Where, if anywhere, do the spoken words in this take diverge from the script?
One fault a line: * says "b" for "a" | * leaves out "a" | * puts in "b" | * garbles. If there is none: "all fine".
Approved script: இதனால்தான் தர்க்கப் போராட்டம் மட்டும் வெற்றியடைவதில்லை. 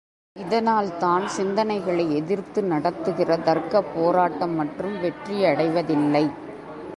* puts in "சிந்தனைகளை எதிர்த்து நடத்துகிற"